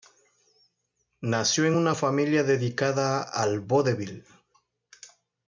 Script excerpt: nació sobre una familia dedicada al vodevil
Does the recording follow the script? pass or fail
fail